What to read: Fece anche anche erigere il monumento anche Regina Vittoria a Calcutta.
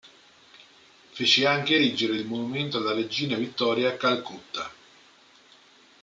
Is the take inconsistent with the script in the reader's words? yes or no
yes